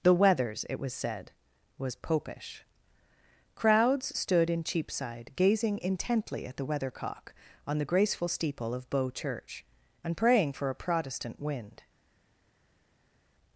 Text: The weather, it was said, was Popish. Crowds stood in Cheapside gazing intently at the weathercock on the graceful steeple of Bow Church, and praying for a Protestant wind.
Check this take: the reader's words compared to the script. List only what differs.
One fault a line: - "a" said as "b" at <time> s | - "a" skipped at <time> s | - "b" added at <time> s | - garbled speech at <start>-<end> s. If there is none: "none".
- "weather" said as "weathers" at 0.1 s